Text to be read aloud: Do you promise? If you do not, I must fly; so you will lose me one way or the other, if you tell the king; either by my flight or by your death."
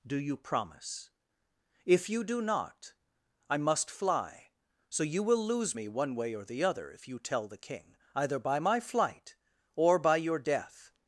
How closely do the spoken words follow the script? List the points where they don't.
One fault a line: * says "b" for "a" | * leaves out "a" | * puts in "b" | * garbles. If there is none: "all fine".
all fine